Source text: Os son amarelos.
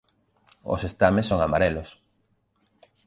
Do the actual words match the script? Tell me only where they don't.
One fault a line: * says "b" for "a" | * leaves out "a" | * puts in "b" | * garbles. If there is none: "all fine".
* puts in "estames"